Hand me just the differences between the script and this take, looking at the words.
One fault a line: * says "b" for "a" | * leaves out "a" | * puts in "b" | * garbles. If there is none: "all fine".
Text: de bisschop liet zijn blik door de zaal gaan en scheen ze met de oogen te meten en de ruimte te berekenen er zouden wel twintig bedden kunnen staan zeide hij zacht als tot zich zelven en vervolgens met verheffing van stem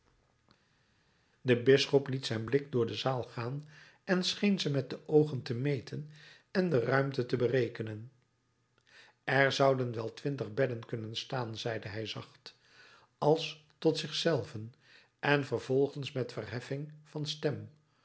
all fine